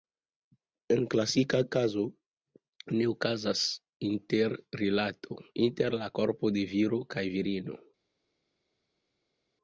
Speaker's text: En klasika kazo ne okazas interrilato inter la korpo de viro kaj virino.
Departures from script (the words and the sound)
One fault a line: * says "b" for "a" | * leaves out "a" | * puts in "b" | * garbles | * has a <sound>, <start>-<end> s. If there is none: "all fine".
all fine